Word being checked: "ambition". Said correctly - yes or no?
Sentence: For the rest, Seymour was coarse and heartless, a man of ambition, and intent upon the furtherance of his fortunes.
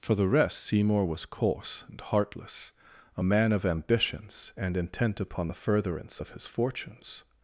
no